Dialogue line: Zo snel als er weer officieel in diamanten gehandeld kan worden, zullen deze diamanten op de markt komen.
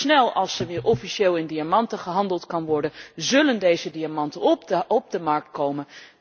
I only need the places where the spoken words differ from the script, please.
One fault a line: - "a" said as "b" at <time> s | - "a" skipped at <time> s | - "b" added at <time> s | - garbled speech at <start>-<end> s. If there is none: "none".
none